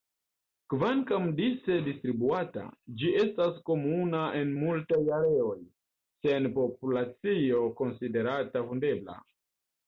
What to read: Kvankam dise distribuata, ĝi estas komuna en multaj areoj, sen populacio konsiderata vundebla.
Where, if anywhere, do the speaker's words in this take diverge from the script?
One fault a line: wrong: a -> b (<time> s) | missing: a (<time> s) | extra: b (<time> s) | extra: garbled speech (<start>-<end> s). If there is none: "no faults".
no faults